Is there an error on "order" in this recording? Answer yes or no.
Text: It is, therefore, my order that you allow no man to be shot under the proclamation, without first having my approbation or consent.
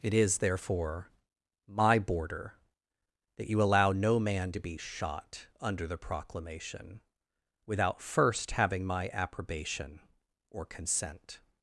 yes